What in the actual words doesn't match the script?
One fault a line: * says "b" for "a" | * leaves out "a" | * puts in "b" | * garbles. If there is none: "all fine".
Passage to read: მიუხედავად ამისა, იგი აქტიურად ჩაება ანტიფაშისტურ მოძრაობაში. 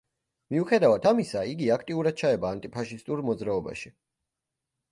all fine